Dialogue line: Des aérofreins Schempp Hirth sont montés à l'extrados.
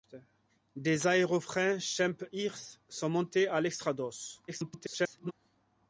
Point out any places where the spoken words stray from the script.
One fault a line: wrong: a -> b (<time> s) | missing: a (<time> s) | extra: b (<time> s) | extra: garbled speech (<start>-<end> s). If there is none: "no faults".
extra: garbled speech (4.5-5.3 s)